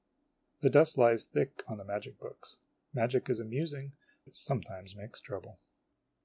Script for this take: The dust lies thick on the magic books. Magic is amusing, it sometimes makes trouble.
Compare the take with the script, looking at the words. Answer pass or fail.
pass